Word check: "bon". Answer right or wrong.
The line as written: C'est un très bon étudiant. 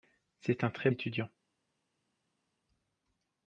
wrong